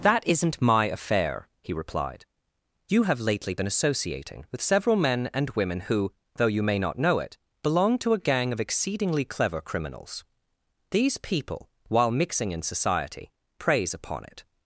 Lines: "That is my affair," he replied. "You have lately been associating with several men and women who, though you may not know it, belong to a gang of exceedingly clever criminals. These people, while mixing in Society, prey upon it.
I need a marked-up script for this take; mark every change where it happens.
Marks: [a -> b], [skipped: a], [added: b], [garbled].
"That [is -> isn't] my affair," he replied. "You have lately been associating with several men and women who, though you may not know it, belong to a gang of exceedingly clever criminals. These people, while mixing in Society, [prey -> preys] upon it.